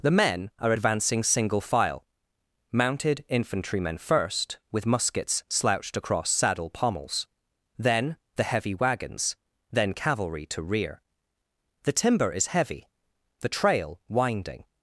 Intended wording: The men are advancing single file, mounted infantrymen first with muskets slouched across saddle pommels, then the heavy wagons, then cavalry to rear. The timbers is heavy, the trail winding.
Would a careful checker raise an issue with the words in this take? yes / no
yes